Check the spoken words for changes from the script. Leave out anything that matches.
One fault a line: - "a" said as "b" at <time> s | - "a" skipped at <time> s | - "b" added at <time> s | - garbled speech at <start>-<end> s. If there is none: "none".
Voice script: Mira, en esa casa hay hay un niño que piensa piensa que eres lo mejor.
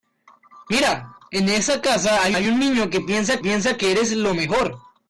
none